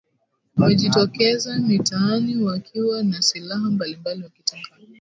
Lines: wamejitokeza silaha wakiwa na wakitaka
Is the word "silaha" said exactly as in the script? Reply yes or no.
no